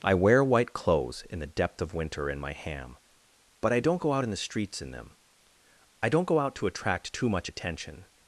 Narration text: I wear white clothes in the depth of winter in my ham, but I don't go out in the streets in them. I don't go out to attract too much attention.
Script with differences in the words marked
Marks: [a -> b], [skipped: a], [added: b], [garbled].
I wear white clothes in the depth of winter in my ham, but I don't go out in the streets in them. I don't go out to attract too much attention.